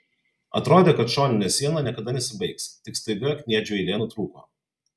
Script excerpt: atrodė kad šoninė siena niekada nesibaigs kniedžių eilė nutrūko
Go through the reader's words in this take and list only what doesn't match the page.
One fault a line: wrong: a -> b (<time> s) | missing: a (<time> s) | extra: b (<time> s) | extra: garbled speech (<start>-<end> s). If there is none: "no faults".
extra: tik staiga (2.9 s)